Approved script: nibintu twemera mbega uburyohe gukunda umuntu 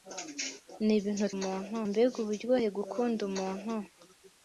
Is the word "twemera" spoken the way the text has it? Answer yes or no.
no